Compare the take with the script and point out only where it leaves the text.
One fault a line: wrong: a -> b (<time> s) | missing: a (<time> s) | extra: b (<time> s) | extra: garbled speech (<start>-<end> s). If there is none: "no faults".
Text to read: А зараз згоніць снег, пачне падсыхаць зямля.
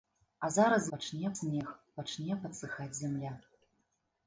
wrong: згоніць -> пачне (1.0 s)